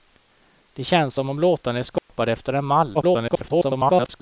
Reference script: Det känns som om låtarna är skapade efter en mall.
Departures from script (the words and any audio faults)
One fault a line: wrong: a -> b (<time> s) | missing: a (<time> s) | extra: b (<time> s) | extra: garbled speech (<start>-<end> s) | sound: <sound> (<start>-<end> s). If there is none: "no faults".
sound: dropout (2.0-2.1 s)
extra: garbled speech (2.9-4.2 s)